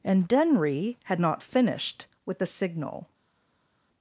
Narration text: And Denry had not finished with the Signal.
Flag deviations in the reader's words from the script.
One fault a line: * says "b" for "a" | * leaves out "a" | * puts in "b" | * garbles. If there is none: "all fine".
all fine